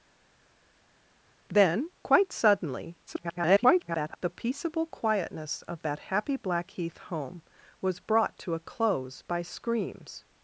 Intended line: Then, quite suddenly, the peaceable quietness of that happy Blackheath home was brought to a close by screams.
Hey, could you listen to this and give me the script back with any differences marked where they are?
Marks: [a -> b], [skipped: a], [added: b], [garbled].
Then, quite suddenly, [garbled] the peaceable quietness of that happy Blackheath home was brought to a close by screams.